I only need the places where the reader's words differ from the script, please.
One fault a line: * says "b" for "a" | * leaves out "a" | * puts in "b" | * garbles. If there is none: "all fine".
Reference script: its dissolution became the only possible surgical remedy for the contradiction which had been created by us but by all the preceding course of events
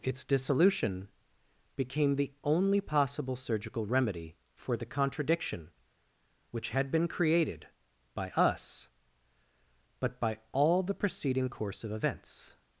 all fine